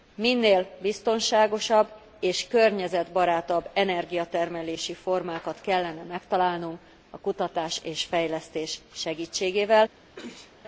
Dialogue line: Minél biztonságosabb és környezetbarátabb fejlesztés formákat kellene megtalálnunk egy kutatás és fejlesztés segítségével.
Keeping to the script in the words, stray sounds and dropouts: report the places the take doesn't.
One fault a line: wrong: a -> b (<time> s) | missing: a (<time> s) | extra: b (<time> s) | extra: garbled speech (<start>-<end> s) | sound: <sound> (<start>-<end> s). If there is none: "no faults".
wrong: fejlesztés -> energiatermelési (3.7 s)
wrong: egy -> a (7.1 s)
sound: sneeze (10.2-10.6 s)